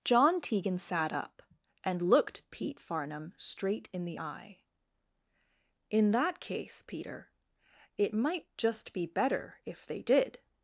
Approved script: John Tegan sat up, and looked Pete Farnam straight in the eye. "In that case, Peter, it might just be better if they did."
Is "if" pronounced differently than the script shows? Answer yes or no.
no